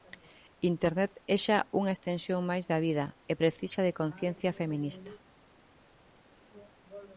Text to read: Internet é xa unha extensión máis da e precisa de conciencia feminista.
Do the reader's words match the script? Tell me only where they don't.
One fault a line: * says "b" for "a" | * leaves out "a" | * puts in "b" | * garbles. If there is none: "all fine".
* puts in "vida"